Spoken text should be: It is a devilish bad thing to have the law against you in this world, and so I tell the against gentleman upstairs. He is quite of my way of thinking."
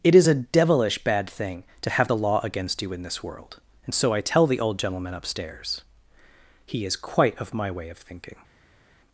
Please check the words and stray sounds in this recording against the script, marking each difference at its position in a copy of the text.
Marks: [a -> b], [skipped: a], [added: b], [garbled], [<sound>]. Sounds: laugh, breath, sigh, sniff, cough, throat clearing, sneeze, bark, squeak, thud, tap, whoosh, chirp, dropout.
It is a devilish bad thing to have the law against you in this world, and so I tell the [against -> old] gentleman upstairs. He is quite of my way of thinking."